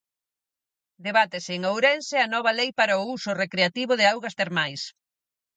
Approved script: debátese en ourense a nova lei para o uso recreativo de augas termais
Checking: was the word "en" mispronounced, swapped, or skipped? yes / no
no